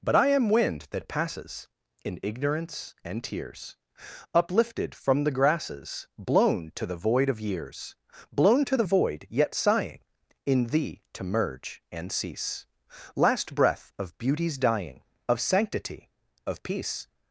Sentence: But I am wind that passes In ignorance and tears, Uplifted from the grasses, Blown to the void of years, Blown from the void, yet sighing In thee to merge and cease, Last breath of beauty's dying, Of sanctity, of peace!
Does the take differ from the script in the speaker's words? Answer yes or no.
yes